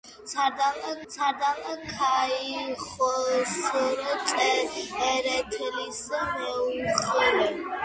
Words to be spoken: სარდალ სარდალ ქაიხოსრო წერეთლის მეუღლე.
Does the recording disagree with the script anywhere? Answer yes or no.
no